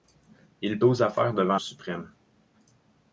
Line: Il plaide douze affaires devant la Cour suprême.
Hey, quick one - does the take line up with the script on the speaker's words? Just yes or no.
no